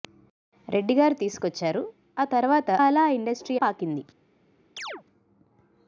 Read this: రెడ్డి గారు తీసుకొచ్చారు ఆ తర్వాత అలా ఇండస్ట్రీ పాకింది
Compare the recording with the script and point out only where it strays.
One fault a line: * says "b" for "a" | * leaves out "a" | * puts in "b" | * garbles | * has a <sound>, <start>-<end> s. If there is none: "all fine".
* has a chirp, 4.8-5.0 s